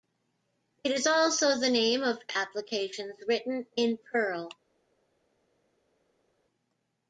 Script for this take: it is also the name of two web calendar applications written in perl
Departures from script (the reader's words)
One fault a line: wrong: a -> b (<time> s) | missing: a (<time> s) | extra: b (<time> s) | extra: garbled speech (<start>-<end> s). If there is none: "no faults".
missing: two web calendar (2.2 s)